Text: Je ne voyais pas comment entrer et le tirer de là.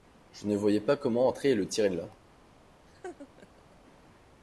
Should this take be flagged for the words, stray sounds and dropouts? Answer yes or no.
yes